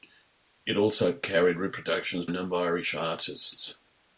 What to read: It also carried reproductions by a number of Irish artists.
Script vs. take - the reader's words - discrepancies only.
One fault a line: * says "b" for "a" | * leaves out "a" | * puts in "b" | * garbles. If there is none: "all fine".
* leaves out "by"
* leaves out "of"